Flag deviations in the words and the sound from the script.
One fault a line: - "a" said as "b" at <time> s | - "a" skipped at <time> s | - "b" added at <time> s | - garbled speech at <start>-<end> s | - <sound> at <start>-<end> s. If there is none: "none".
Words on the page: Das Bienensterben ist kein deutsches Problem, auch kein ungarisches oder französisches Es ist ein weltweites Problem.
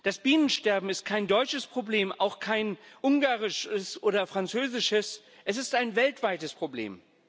none